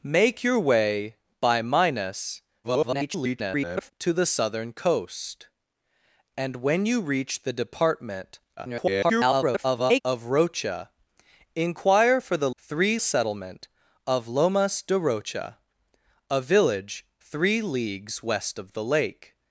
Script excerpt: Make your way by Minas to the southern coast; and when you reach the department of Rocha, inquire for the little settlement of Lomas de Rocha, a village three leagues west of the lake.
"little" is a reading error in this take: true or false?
true